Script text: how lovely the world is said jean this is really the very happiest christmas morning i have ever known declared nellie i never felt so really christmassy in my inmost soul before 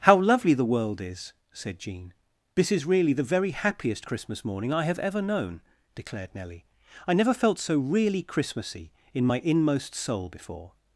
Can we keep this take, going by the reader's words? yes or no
yes